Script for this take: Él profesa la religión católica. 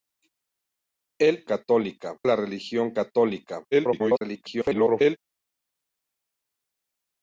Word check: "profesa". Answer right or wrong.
wrong